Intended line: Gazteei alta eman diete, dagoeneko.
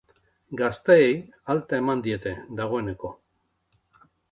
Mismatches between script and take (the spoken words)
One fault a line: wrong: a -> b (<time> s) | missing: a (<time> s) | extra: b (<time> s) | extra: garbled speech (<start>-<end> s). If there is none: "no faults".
no faults